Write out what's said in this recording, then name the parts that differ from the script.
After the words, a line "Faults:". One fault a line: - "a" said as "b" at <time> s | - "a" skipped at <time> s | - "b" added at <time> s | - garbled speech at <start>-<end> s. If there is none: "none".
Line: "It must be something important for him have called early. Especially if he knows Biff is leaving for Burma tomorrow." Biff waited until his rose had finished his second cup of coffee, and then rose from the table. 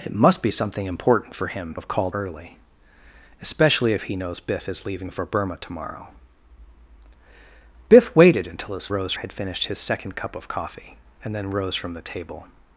"It must be something important for him have called early. Especially if he knows Biff is leaving for Burma tomorrow." Biff waited until his rose had finished his second cup of coffee, and then rose from the table.
Faults:
none